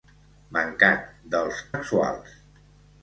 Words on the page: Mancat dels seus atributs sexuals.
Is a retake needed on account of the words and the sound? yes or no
yes